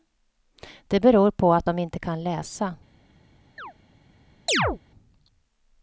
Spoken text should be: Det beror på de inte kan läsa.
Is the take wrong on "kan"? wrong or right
right